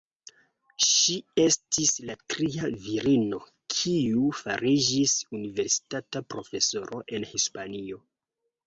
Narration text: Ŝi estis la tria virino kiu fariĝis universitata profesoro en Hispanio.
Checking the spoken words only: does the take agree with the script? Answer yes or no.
yes